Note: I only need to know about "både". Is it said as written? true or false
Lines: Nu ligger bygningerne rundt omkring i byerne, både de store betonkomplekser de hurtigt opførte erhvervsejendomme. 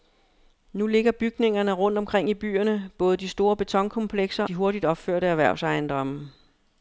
true